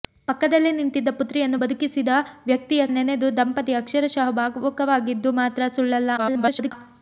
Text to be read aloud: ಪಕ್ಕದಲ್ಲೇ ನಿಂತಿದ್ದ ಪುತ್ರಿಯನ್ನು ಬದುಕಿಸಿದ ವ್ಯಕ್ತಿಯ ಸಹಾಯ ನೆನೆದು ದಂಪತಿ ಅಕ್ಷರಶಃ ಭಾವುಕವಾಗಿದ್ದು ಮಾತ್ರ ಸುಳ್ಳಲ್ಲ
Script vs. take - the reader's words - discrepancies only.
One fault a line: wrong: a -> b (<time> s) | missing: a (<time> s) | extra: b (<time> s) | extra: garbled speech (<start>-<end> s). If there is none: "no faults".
missing: ಸಹಾಯ (2.8 s)
extra: garbled speech (6.2-6.7 s)